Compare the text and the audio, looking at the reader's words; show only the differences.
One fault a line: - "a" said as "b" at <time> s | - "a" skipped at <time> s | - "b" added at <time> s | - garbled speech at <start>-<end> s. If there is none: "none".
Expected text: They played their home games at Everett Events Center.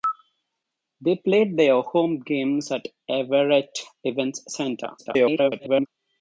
- garbled speech at 5.0-5.9 s